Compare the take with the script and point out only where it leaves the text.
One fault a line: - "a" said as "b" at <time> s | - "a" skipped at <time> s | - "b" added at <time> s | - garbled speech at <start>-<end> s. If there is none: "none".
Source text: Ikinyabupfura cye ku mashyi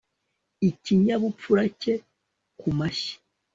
none